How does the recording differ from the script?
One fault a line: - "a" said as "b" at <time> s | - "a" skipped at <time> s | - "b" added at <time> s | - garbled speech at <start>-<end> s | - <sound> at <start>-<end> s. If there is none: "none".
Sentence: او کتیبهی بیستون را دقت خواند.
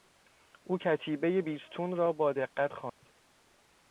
- "با" added at 2.1 s
- dropout at 2.9-3.0 s